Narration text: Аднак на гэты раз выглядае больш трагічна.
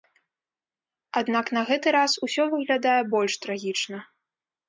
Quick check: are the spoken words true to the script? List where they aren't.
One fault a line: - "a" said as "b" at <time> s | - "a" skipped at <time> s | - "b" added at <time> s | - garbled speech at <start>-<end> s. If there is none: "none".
- "усё" added at 2.3 s